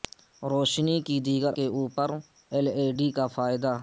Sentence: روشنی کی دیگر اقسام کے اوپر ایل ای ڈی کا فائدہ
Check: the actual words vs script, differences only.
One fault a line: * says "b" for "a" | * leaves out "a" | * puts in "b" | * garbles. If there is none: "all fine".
* leaves out "اقسام"